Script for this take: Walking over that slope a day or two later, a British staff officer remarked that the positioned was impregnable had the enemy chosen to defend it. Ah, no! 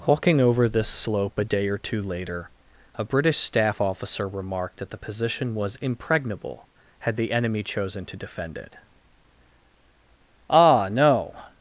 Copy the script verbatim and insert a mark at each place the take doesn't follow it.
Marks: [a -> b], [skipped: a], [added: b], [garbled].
Walking over [that -> this] slope a day or two later, a British staff officer remarked that the [positioned -> position] was impregnable had the enemy chosen to defend it. Ah, no!